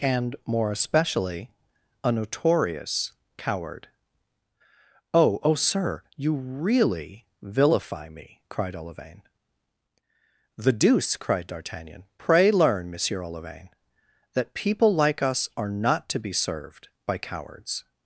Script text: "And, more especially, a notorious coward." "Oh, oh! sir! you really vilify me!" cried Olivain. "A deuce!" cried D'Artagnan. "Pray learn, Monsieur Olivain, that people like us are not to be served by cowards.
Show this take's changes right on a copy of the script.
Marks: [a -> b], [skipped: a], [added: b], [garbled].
"And, more especially, a notorious coward." "Oh, oh! sir! you really vilify me!" cried Olivain. ["A -> The] deuce!" cried D'Artagnan. "Pray learn, Monsieur Olivain, that people like us are not to be served by cowards.